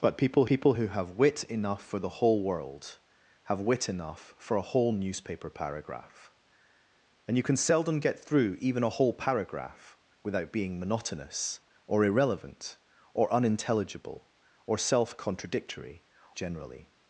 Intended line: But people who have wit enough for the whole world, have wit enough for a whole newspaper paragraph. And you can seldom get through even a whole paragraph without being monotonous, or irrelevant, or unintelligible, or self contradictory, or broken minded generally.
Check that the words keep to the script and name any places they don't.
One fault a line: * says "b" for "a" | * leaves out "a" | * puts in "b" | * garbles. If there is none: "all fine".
* puts in "people"
* leaves out "or broken minded"